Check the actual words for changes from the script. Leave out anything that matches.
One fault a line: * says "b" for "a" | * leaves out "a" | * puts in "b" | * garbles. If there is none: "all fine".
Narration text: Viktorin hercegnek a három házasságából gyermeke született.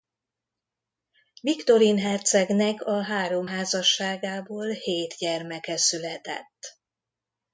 * puts in "hét"